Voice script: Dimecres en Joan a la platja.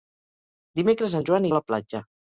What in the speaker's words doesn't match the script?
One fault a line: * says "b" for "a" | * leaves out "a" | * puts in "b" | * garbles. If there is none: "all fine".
all fine